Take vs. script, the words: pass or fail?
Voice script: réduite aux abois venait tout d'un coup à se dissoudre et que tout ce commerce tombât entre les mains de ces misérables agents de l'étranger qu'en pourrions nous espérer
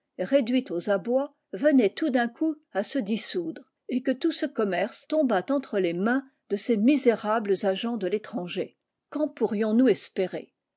pass